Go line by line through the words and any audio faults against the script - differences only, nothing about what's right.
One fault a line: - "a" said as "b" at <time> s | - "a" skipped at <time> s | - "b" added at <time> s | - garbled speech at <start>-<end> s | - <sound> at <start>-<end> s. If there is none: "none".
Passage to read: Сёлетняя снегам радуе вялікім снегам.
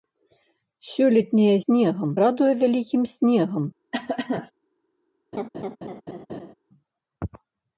- cough at 3.9-4.5 s
- laugh at 5.3-6.5 s